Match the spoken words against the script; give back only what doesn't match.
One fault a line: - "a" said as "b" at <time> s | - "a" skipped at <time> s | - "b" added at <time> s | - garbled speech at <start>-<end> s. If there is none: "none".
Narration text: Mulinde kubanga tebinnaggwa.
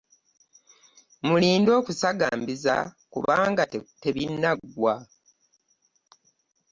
- "okusagambiza" added at 1.8 s